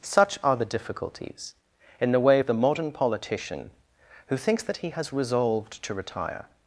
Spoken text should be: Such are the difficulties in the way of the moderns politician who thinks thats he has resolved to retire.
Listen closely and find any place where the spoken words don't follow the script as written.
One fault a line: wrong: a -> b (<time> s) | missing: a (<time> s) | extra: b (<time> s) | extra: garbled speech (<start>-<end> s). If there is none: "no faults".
wrong: moderns -> modern (2.5 s)
wrong: thats -> that (4.6 s)